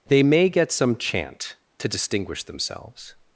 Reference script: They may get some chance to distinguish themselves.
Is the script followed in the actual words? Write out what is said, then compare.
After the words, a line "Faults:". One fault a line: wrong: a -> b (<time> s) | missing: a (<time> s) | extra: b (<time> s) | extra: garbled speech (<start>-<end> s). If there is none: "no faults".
They may get some chant to distinguish themselves.
Faults:
wrong: chance -> chant (1.0 s)